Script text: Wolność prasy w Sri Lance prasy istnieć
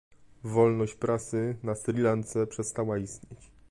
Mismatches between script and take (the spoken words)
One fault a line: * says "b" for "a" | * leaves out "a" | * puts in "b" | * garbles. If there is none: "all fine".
* says "na" for "w"
* says "przestała" for "prasy"